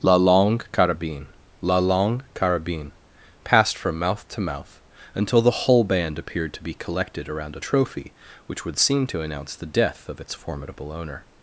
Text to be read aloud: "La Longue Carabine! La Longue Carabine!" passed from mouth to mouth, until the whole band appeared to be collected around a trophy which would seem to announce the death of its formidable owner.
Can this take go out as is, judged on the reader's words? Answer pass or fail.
pass